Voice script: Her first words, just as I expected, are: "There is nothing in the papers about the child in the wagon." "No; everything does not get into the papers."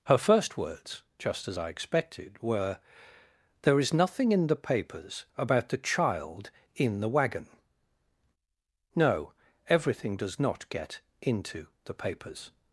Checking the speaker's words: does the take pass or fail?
fail